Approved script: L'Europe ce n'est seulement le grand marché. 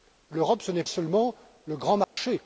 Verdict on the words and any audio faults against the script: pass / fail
fail